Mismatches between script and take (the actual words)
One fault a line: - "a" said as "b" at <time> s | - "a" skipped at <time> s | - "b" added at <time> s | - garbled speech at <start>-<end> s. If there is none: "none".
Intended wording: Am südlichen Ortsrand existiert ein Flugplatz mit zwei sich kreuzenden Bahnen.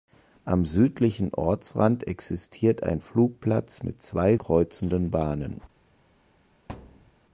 - "sich" skipped at 4.3 s